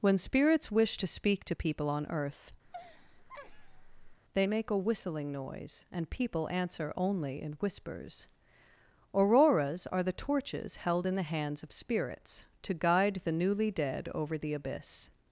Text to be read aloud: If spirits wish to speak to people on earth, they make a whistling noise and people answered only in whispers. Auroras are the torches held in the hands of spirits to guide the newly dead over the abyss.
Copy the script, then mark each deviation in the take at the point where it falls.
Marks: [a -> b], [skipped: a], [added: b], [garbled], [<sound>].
[If -> When] spirits wish to speak to people on earth, [laugh] they make a whistling noise and people [answered -> answer] only in whispers. Auroras are the torches held in the hands of spirits to guide the newly dead over the abyss.